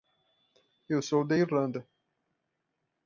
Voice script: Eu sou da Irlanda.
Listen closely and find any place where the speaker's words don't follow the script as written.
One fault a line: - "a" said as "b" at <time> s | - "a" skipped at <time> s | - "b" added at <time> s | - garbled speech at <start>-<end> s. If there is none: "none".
none